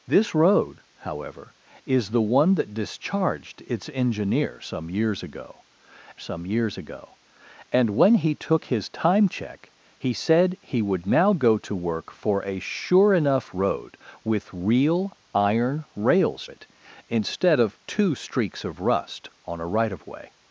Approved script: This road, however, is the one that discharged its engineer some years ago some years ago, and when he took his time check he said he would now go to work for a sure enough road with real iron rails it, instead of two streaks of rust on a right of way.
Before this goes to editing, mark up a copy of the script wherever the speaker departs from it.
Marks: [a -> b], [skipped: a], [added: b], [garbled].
This road, however, is the one that discharged its engineer some years ago some years ago, and when he took his time check he said he would now go to work for a sure enough road with real iron rails it, instead of two streaks of rust on a right of way.